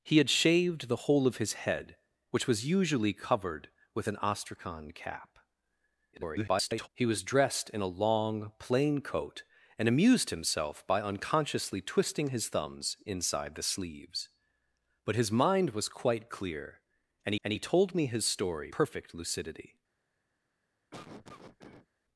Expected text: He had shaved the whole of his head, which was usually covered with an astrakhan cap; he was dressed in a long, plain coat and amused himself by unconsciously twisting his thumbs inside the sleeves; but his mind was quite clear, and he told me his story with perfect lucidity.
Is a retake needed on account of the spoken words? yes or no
yes